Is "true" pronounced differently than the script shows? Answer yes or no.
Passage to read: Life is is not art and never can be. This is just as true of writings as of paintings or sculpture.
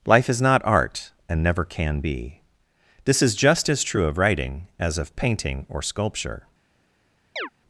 no